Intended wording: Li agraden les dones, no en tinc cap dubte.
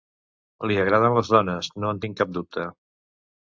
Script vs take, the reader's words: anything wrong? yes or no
no